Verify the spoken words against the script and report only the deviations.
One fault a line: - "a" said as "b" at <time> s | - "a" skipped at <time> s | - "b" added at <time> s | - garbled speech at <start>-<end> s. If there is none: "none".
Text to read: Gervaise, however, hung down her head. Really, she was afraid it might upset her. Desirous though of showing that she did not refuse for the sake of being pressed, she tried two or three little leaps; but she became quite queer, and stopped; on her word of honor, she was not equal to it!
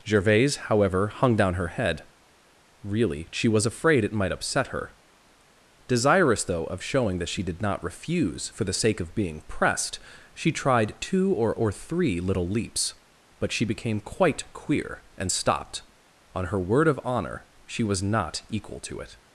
- "or" added at 11.5 s